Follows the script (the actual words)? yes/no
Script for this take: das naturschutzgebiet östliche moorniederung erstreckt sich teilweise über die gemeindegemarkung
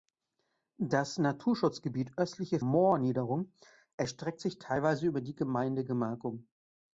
yes